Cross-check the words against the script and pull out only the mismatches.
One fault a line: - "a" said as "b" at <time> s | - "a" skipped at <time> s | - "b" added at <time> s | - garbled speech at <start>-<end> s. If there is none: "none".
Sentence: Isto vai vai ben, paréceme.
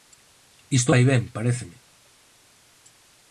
- "vai" skipped at 1.0 s